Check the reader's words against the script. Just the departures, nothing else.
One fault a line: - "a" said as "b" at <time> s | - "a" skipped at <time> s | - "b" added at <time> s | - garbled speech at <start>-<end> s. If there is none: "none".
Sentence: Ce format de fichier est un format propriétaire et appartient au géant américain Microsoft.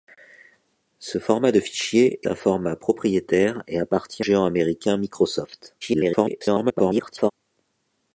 - "est" skipped at 2.3 s
- "au" skipped at 4.2 s
- garbled speech at 5.8-7.3 s